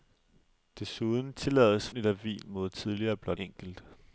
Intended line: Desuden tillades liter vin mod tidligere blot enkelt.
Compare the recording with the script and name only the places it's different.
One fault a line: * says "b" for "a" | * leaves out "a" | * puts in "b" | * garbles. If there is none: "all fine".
all fine